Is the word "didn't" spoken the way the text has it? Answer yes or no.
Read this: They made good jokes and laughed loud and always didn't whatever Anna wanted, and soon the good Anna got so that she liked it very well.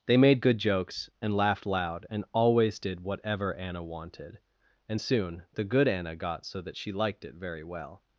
no